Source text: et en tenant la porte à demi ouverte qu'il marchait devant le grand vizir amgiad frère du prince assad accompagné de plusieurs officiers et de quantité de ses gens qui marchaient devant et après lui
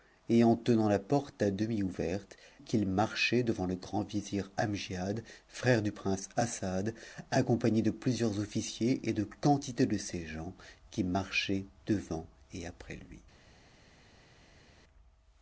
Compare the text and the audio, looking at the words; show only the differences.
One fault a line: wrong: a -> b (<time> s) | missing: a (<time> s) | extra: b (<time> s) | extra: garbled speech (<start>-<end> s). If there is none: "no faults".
no faults